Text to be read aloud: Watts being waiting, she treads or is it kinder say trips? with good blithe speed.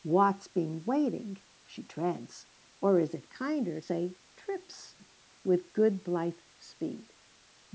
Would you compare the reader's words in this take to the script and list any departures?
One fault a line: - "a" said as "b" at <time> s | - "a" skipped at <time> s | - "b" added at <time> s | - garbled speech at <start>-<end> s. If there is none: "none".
none